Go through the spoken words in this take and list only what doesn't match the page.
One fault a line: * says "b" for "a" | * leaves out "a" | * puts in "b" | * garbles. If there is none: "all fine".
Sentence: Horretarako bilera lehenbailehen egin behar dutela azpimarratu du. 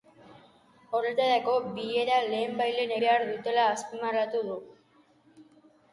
* leaves out "egin"